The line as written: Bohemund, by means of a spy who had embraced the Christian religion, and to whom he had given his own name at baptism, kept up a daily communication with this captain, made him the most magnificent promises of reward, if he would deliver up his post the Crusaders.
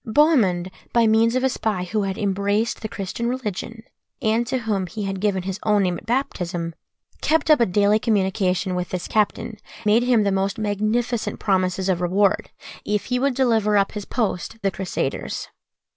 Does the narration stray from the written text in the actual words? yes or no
no